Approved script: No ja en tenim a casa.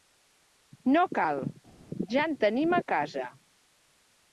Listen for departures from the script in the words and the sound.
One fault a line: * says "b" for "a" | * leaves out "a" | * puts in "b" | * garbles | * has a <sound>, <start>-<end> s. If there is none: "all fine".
* puts in "cal"